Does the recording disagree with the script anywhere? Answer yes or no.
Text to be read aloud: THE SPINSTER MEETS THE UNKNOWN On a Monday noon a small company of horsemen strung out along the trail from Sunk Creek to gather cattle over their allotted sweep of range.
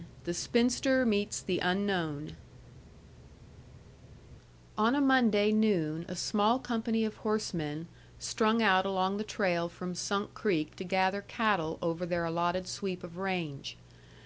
no